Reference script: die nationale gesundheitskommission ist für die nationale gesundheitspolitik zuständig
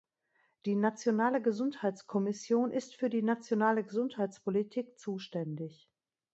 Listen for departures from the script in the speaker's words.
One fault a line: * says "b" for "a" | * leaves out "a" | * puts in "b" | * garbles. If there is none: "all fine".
all fine